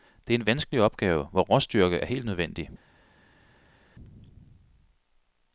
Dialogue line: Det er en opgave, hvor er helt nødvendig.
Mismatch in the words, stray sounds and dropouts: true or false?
true